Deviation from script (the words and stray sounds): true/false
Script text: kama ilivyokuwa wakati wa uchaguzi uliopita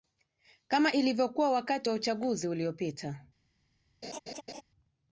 true